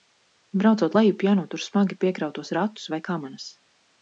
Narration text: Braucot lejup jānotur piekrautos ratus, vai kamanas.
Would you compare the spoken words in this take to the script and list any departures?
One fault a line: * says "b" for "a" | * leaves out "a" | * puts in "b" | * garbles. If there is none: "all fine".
* puts in "smagi"